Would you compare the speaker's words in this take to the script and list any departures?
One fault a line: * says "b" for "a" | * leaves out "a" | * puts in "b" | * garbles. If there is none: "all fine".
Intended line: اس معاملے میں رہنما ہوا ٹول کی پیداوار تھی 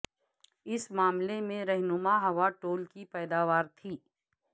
all fine